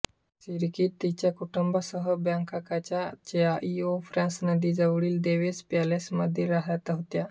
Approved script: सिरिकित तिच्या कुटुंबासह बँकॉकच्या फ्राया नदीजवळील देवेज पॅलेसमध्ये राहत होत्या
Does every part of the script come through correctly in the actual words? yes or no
no